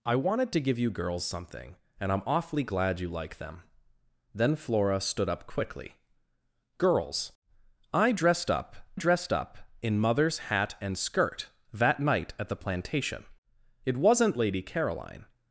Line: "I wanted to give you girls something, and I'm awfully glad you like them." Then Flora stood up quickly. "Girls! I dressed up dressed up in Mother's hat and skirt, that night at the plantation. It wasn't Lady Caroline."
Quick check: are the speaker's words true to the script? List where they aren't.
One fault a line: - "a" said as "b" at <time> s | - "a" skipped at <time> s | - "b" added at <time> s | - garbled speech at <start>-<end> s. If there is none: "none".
none